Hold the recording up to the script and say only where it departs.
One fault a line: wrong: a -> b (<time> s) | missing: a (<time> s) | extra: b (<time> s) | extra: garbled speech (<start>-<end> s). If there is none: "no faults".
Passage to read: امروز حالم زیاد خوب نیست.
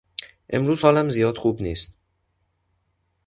no faults